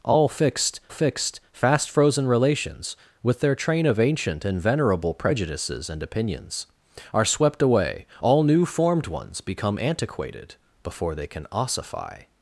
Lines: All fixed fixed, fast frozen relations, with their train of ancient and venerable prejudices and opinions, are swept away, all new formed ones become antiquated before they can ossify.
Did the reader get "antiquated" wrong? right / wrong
right